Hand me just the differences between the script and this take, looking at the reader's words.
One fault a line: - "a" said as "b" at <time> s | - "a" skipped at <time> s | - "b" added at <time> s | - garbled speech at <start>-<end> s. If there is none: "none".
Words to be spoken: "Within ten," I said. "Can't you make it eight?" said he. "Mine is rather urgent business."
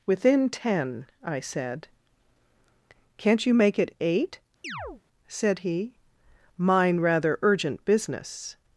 - "is" skipped at 7.0 s